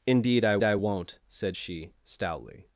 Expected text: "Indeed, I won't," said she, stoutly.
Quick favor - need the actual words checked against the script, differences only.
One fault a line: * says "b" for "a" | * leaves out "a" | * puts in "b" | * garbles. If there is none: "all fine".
* puts in "I"